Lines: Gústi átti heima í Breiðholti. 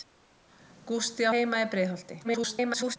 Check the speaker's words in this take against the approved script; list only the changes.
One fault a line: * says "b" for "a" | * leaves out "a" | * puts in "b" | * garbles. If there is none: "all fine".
* leaves out "átti"
* garbles